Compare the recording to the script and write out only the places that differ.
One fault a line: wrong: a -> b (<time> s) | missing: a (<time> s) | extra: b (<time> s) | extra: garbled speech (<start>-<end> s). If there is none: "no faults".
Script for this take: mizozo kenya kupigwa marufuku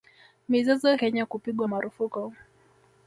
no faults